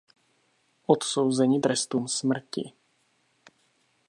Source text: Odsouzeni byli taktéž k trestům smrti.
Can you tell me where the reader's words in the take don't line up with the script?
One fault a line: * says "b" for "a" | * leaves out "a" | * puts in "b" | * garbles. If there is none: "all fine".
* leaves out "byli taktéž k"